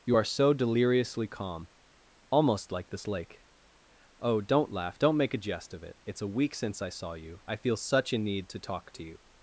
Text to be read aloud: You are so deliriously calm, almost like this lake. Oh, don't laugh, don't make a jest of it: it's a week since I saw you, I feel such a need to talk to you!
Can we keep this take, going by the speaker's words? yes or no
yes